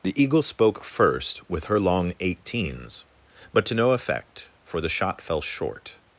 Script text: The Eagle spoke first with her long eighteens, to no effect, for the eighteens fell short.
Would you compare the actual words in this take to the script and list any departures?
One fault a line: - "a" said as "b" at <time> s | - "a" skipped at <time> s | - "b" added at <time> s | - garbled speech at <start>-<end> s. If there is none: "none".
- "but" added at 3.5 s
- "eighteens" said as "shot" at 4.9 s